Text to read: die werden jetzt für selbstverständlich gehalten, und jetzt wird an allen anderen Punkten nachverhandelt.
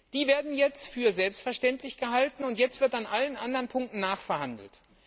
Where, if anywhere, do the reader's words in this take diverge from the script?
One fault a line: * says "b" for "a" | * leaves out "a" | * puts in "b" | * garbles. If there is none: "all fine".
all fine